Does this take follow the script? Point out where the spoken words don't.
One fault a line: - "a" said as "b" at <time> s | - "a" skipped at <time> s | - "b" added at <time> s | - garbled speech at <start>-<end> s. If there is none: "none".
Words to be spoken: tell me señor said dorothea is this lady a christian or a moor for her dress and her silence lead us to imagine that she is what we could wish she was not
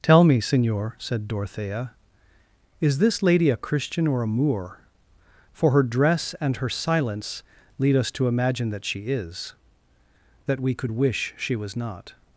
- "what" said as "that" at 10.5 s